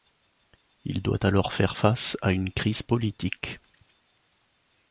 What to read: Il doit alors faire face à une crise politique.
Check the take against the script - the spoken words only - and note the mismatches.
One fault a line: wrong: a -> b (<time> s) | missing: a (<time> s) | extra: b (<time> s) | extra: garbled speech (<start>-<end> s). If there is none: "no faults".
no faults